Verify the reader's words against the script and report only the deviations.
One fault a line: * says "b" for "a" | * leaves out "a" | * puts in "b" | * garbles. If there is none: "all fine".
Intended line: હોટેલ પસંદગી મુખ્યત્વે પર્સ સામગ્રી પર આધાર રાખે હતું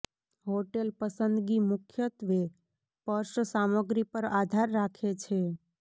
* says "છે" for "હતું"